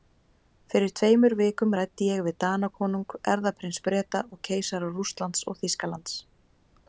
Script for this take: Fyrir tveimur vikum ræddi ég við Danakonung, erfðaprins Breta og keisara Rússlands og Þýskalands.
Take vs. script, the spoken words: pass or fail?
pass